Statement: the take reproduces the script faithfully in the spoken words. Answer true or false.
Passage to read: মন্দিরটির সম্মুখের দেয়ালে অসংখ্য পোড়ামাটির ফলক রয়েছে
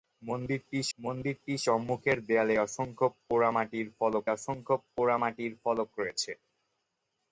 false